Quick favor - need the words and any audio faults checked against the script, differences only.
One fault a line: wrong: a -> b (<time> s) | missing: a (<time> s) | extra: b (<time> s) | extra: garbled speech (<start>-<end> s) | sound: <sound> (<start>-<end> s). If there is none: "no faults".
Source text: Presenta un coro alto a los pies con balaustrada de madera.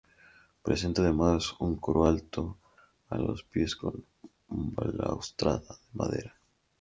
extra: además (1.0 s)